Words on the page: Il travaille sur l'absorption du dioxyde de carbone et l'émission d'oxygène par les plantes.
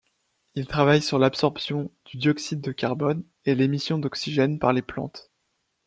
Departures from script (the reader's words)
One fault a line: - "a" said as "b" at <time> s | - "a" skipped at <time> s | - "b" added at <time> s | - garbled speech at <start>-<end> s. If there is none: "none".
none